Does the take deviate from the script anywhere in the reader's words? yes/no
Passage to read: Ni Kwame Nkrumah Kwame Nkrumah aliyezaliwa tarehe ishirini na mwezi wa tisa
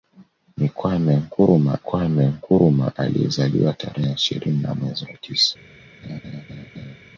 no